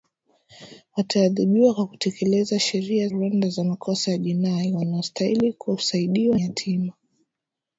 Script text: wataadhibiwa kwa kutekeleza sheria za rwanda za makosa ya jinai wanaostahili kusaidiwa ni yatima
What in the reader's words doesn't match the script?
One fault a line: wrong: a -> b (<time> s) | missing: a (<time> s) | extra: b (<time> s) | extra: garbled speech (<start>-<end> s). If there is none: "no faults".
missing: za (3.1 s)
missing: ni (6.4 s)